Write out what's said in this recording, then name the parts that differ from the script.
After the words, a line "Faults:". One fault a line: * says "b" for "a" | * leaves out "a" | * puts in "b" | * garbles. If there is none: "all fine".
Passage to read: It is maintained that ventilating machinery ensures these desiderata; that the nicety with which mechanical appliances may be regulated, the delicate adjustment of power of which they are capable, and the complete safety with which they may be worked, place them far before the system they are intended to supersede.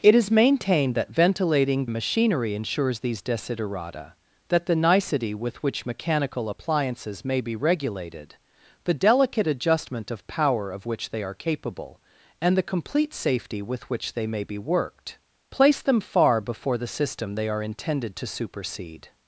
It is maintained that ventilating machinery ensures these desiderata; that the nicety with which mechanical appliances may be regulated, the delicate adjustment of power of which they are capable, and the complete safety with which they may be worked, place them far before the system they are intended to supersede.
Faults:
all fine